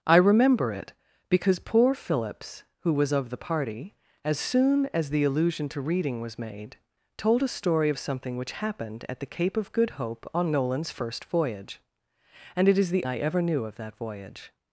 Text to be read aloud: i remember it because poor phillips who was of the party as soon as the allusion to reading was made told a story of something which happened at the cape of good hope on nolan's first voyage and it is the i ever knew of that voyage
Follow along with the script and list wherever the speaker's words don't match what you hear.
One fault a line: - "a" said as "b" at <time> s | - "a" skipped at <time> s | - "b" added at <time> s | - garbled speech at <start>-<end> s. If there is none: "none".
none